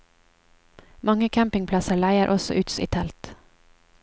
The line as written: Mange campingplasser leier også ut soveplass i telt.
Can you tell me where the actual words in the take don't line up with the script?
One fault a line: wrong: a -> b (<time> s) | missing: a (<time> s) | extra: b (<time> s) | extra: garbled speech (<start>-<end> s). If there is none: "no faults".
missing: soveplass (2.7 s)